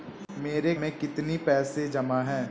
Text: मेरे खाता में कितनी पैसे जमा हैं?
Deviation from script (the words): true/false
true